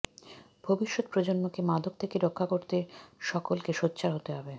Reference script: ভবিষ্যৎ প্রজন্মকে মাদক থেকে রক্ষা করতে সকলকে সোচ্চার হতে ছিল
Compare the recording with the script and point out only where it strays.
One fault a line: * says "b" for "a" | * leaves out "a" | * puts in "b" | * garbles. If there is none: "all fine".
* says "হবে" for "ছিল"